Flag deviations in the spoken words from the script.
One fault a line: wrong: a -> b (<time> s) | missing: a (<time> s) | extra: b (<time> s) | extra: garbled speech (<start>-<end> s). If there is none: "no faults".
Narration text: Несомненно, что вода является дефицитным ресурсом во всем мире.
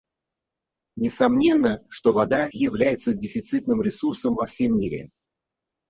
no faults